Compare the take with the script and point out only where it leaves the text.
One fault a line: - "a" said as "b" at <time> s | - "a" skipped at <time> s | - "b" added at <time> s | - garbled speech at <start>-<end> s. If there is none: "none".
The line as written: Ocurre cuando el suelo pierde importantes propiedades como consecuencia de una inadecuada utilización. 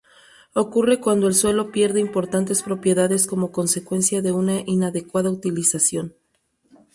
none